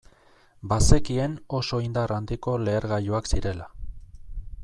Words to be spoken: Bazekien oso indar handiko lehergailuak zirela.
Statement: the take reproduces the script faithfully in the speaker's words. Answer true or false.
true